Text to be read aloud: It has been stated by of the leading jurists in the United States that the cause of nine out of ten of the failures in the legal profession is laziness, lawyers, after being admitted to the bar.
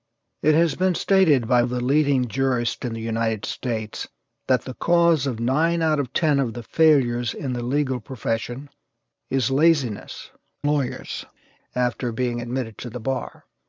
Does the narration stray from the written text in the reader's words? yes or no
no